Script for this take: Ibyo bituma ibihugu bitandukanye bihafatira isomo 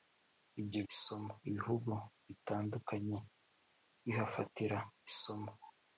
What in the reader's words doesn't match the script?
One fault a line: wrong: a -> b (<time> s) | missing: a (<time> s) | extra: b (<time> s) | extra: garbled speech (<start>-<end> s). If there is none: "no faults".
wrong: bituma -> isomo (0.9 s)